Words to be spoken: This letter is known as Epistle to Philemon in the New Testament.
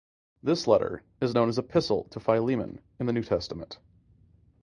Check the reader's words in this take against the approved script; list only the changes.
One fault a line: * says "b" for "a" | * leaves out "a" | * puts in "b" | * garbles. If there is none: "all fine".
all fine